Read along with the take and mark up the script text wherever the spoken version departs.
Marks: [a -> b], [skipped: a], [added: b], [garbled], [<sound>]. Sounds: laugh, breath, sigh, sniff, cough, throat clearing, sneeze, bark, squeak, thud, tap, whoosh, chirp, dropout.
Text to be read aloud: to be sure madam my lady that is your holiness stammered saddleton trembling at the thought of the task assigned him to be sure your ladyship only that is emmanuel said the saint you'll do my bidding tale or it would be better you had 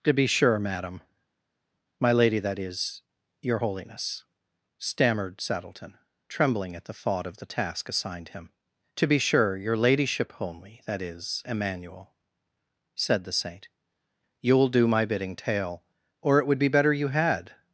to be sure madam my lady that is your holiness stammered saddleton trembling at the thought of the task assigned him to be sure your ladyship only that is emmanuel said the saint you'll do my bidding tale or it would be better you had